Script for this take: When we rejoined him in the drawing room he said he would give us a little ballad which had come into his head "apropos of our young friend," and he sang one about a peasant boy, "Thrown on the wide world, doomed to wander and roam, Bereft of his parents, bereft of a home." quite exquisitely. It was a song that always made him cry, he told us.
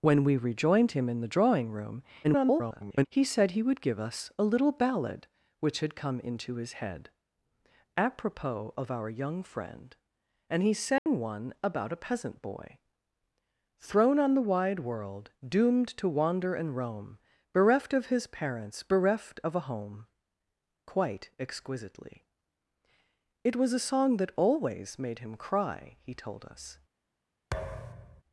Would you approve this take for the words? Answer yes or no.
no